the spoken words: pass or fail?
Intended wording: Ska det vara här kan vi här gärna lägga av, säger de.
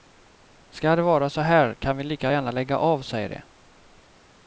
fail